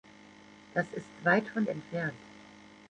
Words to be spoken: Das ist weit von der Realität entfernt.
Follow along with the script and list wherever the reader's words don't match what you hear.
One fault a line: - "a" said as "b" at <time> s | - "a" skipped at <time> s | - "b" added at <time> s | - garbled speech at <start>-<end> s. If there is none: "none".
- "der Realität" skipped at 1.7 s